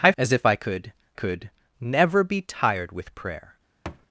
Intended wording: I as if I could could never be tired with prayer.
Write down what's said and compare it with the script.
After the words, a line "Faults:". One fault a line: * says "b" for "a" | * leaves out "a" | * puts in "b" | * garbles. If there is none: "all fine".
I as if I could could never be tired with prayer.
Faults:
all fine